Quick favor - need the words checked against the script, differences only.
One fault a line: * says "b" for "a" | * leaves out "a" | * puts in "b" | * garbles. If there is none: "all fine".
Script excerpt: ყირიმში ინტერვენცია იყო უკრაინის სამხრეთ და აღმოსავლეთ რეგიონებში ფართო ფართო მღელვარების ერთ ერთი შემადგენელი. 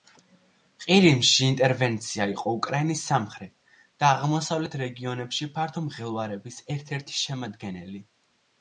* leaves out "ფართო"